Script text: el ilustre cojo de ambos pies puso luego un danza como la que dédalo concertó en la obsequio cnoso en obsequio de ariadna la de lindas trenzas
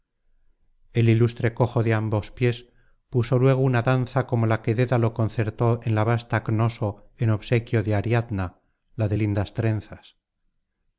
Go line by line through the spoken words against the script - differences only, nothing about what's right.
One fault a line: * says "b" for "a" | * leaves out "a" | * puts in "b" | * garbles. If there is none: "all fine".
* says "una" for "un"
* says "vasta" for "obsequio"